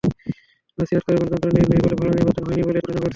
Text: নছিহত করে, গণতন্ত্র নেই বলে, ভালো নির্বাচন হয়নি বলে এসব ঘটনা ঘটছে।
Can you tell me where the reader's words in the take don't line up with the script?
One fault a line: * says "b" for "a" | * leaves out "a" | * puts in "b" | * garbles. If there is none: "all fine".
* puts in "নেই"
* leaves out "এসব"